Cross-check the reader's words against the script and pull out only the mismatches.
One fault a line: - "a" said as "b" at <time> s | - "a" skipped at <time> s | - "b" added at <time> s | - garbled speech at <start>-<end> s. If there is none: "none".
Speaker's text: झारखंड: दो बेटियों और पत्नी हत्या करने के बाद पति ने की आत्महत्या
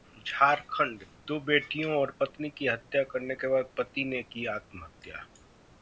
- "की" added at 2.5 s